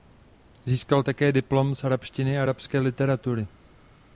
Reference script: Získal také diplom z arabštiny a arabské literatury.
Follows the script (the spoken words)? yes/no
yes